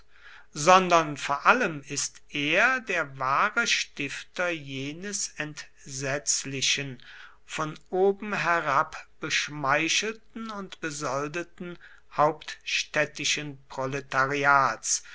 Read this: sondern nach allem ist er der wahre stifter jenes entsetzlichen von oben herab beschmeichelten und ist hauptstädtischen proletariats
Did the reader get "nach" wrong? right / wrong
wrong